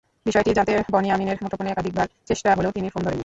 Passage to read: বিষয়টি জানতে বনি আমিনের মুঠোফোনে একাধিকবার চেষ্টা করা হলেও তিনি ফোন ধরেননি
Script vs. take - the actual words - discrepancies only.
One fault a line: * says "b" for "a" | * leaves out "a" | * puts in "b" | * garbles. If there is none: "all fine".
* leaves out "করা"